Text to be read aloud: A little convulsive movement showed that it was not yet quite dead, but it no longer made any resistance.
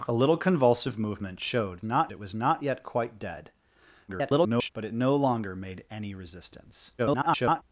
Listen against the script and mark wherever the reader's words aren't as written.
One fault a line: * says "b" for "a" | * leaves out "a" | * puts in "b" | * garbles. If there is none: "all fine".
* says "not" for "that"
* garbles
* garbles